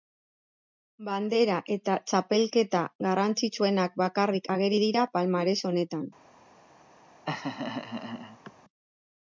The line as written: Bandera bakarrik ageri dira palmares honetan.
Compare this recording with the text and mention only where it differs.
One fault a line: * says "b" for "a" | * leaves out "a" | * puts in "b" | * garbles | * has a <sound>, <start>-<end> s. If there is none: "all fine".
* puts in "eta Txapelketa garrantzitsuenak"
* has a laugh, 7.3-8.5 s